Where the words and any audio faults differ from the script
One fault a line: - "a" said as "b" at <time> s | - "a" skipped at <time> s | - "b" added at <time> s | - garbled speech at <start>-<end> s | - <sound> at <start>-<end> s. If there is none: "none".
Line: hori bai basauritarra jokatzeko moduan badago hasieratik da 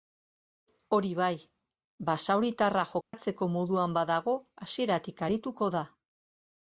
- dropout at 3.0-3.1 s
- "arituko" added at 5.3 s